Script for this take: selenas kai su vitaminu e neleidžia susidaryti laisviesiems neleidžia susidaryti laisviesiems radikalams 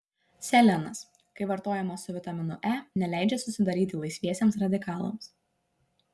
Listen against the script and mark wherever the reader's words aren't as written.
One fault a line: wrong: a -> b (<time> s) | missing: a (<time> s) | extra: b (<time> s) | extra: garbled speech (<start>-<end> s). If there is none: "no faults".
extra: vartojamas (1.5 s)
missing: neleidžia susidaryti laisviesiems (4.6 s)